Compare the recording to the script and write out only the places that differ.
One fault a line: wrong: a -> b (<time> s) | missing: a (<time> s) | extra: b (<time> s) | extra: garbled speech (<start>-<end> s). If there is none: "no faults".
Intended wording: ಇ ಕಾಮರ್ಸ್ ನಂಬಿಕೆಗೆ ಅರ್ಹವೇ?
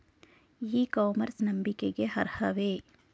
no faults